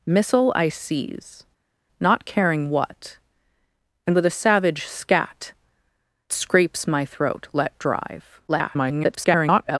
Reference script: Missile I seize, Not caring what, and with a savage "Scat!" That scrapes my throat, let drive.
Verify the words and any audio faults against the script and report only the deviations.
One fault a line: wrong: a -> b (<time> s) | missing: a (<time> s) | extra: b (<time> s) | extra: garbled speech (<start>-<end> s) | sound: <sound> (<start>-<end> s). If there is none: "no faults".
missing: That (5.5 s)
extra: garbled speech (8.5-9.8 s)